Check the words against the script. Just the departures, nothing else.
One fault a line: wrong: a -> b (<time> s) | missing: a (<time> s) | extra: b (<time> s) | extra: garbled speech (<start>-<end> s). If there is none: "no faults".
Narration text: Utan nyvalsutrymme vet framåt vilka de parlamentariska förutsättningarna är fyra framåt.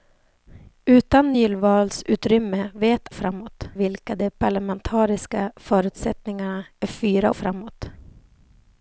no faults